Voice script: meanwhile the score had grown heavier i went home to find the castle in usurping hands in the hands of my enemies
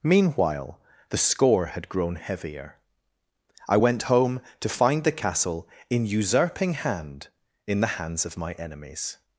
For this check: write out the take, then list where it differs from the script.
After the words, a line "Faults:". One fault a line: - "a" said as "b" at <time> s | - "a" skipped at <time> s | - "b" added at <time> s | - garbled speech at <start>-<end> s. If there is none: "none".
meanwhile the score had grown heavier i went home to find the castle in usurping hand in the hands of my enemies
Faults:
- "hands" said as "hand" at 6.7 s